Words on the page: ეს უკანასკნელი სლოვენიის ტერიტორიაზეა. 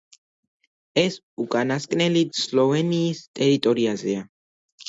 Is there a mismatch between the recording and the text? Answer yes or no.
no